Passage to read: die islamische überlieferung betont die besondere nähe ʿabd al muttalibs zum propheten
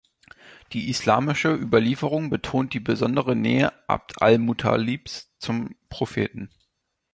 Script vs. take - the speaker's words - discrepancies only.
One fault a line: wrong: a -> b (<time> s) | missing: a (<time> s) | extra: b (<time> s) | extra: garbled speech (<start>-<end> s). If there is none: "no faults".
no faults